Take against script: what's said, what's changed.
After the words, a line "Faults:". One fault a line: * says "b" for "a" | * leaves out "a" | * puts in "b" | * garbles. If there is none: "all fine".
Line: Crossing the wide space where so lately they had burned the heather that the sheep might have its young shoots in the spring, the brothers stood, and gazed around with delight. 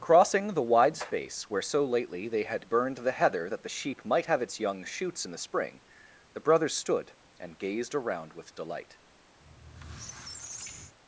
Crossing the wide space where so lately they had burned the heather that the sheep might have its young shoots in the spring, the brothers stood, and gazed around with delight.
Faults:
all fine